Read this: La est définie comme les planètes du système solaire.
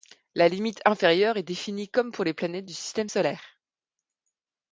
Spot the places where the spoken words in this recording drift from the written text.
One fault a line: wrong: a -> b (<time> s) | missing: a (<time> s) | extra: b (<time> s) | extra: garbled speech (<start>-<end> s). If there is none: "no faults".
extra: limite inférieure (0.5 s)
extra: pour (2.1 s)